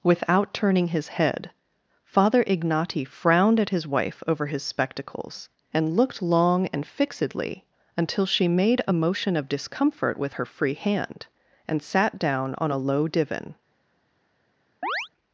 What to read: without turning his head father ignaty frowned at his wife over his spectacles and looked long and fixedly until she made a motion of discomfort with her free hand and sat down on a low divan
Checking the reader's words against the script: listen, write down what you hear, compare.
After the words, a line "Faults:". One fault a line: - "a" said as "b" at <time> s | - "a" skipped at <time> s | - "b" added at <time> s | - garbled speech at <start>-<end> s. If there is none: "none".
without turning his head father ignaty frowned at his wife over his spectacles and looked long and fixedly until she made a motion of discomfort with her free hand and sat down on a low divan
Faults:
none